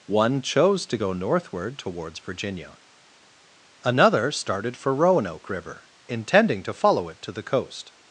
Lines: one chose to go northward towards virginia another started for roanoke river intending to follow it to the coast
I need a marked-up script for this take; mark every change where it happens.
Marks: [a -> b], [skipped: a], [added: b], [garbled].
one chose to go northward towards virginia another started for roanoke river intending to follow it to the coast